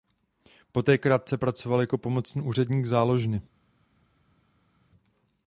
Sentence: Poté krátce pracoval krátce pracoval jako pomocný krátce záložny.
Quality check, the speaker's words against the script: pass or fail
fail